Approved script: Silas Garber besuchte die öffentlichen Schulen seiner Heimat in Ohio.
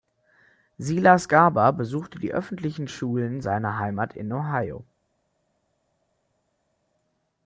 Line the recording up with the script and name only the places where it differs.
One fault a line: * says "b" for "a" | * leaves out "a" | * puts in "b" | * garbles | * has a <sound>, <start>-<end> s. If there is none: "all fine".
all fine